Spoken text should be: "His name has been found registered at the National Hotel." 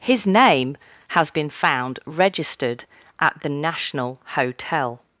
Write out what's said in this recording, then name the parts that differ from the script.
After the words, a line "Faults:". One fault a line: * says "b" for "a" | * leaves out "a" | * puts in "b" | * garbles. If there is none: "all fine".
"His name has been found registered at the National Hotel."
Faults:
all fine